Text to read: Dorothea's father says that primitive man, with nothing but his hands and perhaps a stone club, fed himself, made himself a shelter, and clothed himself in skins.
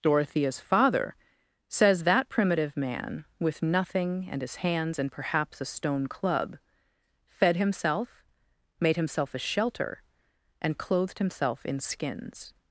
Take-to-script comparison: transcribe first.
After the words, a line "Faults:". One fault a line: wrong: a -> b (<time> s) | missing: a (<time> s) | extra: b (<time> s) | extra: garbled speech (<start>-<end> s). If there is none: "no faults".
Dorothea's father says that primitive man, with nothing and his hands and perhaps a stone club, fed himself, made himself a shelter, and clothed himself in skins.
Faults:
wrong: but -> and (4.3 s)